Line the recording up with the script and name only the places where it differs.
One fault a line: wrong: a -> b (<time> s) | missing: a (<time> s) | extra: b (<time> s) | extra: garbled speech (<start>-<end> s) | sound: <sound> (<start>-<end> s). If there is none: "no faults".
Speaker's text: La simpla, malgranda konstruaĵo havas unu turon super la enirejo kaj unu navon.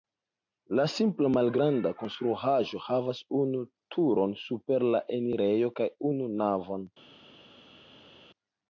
no faults